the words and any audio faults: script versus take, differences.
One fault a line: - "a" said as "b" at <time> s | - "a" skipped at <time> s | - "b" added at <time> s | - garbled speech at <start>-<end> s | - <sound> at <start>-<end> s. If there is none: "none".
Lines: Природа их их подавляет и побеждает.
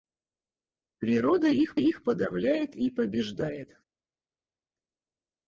none